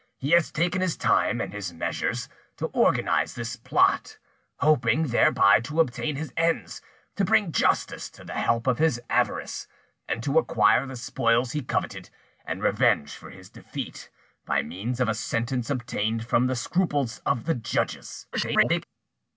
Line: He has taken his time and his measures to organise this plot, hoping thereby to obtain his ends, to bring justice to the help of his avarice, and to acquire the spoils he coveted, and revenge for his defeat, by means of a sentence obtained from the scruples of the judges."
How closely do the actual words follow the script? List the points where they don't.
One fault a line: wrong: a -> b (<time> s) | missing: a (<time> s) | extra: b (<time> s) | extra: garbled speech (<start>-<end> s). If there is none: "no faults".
extra: garbled speech (18.3-18.8 s)